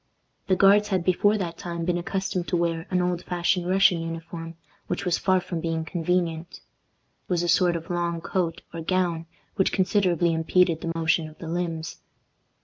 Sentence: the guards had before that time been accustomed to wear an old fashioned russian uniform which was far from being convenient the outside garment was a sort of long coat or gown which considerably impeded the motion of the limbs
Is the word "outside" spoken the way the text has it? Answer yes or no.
no